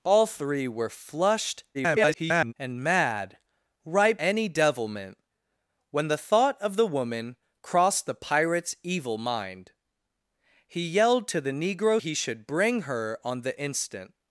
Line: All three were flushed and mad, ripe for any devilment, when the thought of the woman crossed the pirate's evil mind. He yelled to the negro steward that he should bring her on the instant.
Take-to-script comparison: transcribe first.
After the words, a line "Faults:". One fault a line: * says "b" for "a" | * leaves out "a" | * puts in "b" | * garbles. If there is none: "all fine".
All three were flushed [garbled] and mad, ripe any devilment, when the thought of the woman crossed the pirate's evil mind. He yelled to the negro he should bring her on the instant.
Faults:
* garbles
* leaves out "for"
* leaves out "steward that"